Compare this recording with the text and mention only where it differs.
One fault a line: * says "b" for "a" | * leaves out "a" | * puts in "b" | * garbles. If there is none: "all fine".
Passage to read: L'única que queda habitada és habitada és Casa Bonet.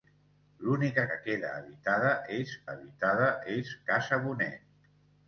all fine